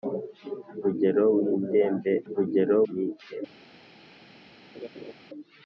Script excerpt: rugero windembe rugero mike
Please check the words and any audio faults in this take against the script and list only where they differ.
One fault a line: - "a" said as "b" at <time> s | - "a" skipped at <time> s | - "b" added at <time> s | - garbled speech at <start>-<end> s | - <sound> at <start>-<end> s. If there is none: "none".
- laugh at 4.7-5.1 s